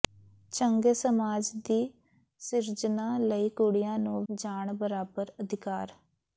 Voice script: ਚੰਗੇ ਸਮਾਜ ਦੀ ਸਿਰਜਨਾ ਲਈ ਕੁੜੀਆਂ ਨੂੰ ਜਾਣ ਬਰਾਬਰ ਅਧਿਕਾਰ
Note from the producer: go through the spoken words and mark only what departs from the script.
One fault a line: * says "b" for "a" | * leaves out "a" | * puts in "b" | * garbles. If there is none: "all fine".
all fine